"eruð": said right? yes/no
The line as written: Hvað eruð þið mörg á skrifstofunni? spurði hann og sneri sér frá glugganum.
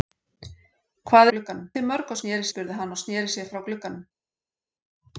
no